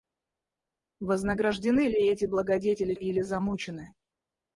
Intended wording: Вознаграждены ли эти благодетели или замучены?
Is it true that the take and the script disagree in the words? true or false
false